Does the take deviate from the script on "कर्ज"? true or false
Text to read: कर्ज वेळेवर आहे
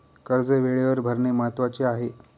false